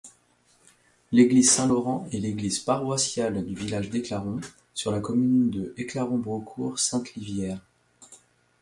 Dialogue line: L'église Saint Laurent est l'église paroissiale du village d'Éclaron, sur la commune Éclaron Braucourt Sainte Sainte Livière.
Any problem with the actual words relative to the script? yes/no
yes